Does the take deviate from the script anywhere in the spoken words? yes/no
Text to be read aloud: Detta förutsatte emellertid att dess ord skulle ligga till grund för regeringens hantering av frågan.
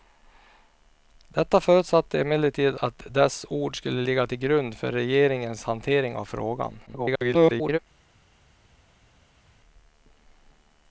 yes